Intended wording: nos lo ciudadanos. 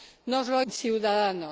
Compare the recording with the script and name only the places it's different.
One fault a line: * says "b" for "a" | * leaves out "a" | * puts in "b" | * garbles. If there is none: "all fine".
all fine